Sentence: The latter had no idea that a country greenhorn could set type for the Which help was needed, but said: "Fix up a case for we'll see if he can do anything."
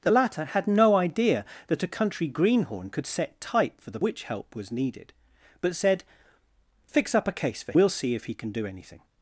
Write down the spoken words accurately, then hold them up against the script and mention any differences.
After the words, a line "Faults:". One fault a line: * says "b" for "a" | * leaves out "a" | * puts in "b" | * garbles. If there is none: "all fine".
The latter had no idea that a country greenhorn could set type for the Which help was needed, but said: "Fix up a case for we'll see if he can do anything."
Faults:
all fine